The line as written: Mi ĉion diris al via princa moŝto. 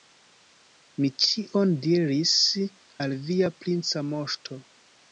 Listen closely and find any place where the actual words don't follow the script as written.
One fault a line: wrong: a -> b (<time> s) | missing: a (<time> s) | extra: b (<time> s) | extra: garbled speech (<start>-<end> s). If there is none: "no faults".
no faults